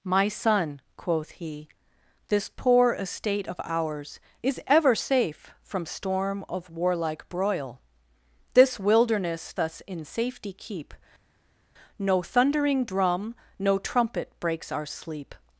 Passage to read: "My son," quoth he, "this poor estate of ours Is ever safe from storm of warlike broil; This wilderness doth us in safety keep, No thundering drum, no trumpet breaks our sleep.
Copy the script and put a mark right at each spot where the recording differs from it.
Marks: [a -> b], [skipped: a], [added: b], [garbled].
"My son," quoth he, "this poor estate of ours Is ever safe from storm of warlike broil; This wilderness [skipped: doth] us in safety keep, No thundering drum, no trumpet breaks our sleep.